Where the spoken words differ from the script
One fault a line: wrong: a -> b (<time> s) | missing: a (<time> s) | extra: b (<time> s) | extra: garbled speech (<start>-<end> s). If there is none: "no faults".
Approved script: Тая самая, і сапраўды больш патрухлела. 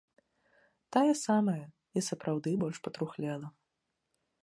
no faults